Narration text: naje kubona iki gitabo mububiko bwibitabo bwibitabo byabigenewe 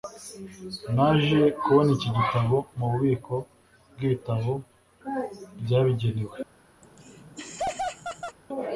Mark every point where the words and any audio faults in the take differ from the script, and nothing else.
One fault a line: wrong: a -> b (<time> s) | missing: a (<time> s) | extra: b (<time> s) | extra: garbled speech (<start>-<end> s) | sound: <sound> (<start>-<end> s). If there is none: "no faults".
missing: bwibitabo (4.5 s)
sound: laugh (6.8-8.4 s)